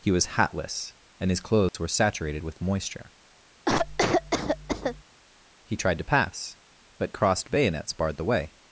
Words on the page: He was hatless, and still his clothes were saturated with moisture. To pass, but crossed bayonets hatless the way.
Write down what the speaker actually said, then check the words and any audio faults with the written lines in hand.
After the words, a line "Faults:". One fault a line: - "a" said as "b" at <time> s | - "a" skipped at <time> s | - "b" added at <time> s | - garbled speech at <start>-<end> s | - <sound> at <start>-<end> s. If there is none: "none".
He was hatless, and his clothes were saturated with moisture. He tried to pass, but crossed bayonets barred the way.
Faults:
- "still" skipped at 1.3 s
- dropout at 1.7-1.7 s
- cough at 3.7-5.0 s
- "He tried" added at 5.7 s
- "hatless" said as "barred" at 7.9 s